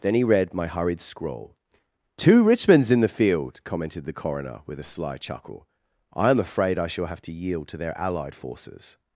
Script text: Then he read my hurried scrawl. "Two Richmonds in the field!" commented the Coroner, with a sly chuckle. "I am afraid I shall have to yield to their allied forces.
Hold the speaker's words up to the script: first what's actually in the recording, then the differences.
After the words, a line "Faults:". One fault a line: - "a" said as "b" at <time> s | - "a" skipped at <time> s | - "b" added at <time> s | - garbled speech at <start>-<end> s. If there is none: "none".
Then he read my hurried scrawl. "Two Richmonds in the field!" commented the Coroner, with a sly chuckle. "I am afraid I shall have to yield to their allied forces.
Faults:
none